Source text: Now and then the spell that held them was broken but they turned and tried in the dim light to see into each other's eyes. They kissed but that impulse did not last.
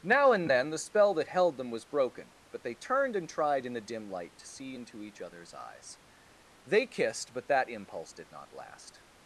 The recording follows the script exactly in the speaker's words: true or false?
true